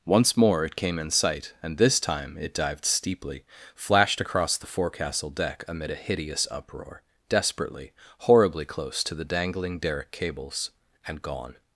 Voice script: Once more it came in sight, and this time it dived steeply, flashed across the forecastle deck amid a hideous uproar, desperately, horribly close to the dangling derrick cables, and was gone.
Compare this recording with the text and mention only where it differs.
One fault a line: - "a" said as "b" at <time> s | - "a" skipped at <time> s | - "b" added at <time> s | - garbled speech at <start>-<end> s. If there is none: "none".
- "was" skipped at 11.2 s